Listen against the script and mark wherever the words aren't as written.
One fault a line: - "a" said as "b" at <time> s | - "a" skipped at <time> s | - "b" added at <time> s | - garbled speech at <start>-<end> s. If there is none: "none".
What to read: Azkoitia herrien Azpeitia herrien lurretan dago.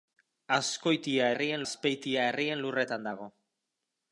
none